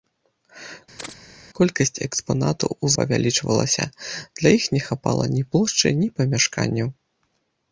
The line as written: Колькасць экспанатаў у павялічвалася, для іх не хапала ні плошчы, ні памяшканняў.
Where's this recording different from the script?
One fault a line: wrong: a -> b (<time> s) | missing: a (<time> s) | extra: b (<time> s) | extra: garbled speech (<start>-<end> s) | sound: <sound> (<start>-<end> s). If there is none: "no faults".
sound: chirp (1.0-1.1 s)